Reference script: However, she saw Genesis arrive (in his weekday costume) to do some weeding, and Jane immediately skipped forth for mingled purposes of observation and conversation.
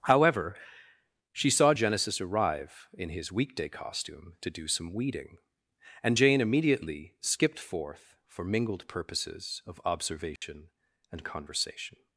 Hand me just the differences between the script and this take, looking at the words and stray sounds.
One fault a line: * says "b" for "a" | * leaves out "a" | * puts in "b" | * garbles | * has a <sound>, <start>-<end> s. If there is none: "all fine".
* has a dropout, 10.4-10.4 s